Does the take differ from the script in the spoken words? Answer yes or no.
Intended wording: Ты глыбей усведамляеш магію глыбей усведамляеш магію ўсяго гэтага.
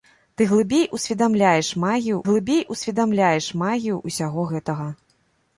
no